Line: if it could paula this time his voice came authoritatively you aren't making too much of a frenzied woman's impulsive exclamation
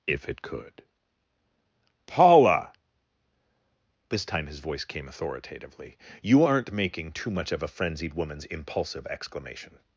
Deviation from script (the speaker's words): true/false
false